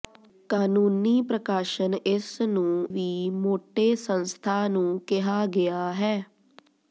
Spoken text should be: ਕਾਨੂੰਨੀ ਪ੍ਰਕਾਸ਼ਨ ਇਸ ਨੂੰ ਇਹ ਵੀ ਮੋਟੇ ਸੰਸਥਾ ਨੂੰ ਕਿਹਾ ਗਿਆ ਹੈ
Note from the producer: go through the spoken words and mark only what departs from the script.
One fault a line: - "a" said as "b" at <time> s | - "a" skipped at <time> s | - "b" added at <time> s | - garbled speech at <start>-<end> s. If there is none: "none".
- "ਇਹ" skipped at 2.9 s